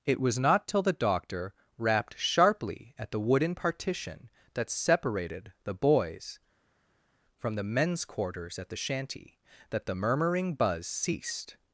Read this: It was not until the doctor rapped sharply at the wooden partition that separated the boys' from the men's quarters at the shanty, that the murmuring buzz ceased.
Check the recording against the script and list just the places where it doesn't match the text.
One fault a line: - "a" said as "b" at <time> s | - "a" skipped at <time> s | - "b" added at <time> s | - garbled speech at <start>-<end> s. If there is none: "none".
- "until" said as "till" at 0.7 s